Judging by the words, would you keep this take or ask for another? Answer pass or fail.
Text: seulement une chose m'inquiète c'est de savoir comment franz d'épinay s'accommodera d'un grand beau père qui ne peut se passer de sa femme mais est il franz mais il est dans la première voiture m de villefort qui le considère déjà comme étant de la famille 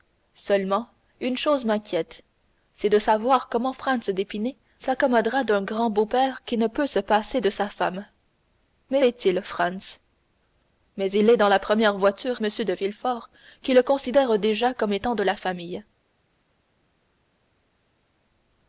pass